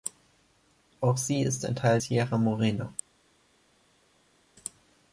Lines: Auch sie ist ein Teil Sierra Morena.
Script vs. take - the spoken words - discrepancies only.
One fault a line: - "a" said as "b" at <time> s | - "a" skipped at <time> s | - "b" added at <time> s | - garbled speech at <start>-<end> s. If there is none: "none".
none